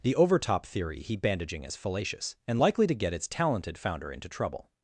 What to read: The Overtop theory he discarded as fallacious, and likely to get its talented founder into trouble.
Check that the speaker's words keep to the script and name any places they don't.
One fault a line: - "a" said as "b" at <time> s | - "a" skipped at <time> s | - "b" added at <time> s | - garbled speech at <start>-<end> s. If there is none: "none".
- "discarded" said as "bandaging" at 1.1 s